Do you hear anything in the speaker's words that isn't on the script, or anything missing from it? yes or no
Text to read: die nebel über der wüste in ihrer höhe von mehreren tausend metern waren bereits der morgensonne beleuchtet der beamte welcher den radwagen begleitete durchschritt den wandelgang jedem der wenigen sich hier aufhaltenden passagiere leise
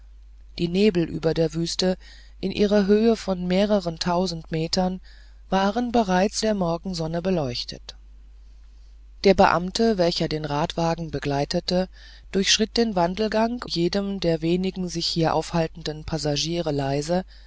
no